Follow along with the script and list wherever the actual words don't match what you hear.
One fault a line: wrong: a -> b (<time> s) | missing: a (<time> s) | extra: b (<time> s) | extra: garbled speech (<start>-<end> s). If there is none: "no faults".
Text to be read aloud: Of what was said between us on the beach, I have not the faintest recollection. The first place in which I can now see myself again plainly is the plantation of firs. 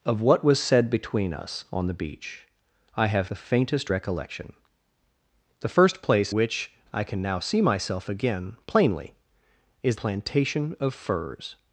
missing: not (3.3 s)
missing: in (6.3 s)
missing: the (10.0 s)